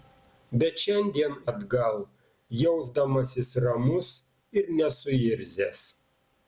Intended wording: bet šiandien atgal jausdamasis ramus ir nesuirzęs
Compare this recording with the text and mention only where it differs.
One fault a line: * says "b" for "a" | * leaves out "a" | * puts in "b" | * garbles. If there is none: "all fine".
all fine